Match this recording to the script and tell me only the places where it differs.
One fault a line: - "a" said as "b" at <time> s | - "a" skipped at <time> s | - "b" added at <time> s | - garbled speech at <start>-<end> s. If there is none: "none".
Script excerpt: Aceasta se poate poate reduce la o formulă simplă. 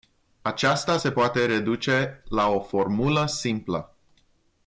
- "poate" skipped at 1.4 s